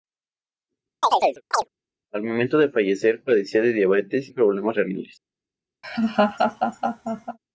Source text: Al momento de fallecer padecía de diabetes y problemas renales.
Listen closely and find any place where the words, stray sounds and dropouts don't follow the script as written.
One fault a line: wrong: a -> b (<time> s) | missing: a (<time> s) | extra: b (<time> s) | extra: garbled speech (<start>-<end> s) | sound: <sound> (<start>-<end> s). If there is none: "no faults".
sound: chirp (1.0-1.7 s)
missing: y (4.3 s)
sound: laugh (5.8-7.4 s)